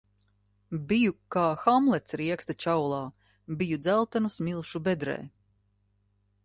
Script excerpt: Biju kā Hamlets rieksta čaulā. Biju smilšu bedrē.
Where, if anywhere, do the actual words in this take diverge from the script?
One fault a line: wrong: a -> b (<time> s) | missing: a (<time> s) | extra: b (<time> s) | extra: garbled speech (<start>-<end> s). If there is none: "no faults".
extra: dzeltenu (3.8 s)